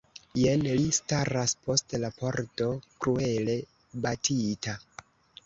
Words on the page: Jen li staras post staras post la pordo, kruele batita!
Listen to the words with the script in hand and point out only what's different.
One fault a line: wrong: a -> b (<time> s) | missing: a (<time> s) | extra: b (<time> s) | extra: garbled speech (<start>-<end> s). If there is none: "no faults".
missing: staras post (2.0 s)